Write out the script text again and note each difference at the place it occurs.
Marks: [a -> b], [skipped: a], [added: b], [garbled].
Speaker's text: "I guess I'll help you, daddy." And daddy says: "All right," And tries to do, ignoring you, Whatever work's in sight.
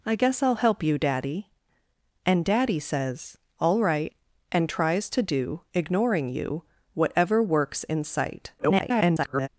"I guess I'll help you, daddy." And daddy says: "All right," And tries to do, ignoring you, Whatever work's in sight. [garbled]